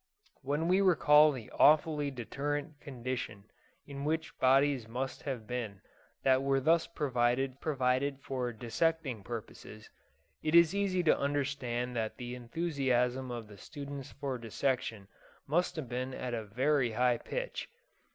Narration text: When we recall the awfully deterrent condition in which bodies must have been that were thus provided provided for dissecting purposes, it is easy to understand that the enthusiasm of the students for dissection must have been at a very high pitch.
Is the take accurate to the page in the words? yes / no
yes